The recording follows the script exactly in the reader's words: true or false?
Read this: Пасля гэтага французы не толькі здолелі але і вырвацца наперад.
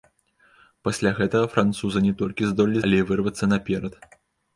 true